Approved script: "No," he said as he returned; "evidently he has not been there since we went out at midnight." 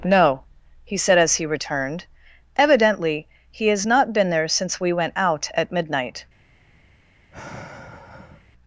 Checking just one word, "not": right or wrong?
right